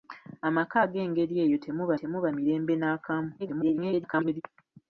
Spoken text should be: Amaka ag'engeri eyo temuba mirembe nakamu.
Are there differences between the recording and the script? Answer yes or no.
yes